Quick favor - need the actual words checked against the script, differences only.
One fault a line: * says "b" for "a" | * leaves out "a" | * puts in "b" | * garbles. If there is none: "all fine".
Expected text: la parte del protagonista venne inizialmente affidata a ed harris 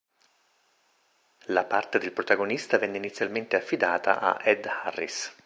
all fine